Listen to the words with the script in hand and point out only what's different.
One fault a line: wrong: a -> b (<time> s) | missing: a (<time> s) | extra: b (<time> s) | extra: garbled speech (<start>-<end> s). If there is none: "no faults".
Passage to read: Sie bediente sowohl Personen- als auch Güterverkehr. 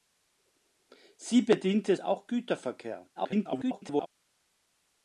missing: sowohl Personen als (1.9 s)
extra: garbled speech (3.2-4.1 s)